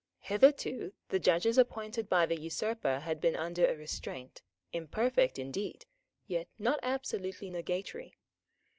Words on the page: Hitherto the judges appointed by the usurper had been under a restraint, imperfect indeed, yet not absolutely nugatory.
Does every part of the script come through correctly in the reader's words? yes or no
yes